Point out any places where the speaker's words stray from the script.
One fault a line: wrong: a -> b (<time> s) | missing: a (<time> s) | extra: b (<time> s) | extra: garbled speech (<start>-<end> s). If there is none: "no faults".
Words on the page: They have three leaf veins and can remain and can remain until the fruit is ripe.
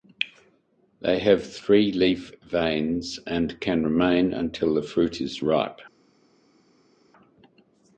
missing: and can remain (4.3 s)